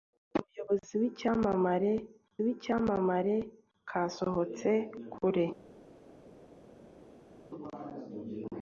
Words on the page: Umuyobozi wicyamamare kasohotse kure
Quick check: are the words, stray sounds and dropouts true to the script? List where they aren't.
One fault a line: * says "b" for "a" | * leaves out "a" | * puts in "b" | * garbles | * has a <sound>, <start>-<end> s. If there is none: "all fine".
* puts in "wicyamamare"